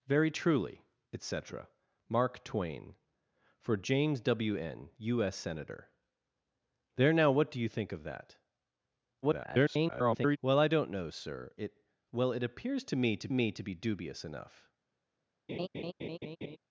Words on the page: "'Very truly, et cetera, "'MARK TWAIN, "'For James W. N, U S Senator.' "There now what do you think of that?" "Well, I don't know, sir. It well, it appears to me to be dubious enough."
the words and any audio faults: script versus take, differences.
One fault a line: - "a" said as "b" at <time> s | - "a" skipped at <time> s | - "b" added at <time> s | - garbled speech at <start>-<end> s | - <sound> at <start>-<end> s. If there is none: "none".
- garbled speech at 9.2-10.4 s
- "me to" added at 13.3 s
- laugh at 15.5-16.6 s